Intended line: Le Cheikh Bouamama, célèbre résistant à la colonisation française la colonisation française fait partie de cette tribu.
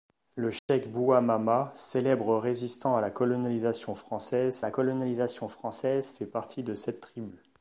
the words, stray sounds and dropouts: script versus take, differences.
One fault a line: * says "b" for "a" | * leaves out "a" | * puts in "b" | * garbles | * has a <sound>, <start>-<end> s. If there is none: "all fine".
* has a dropout, 0.6-0.7 s